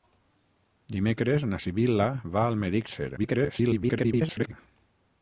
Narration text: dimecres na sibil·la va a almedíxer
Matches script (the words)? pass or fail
fail